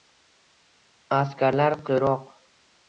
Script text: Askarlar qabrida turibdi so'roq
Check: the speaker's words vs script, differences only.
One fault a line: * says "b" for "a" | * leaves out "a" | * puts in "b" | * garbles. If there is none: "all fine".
* leaves out "qabrida turibdi"